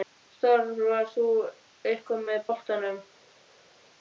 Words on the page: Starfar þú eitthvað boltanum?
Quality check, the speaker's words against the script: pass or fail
fail